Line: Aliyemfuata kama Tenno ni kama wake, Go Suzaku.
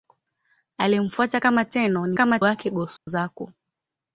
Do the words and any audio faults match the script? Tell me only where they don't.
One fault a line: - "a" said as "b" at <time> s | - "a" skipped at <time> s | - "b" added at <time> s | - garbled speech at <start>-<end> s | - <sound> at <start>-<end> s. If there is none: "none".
- dropout at 3.0-3.1 s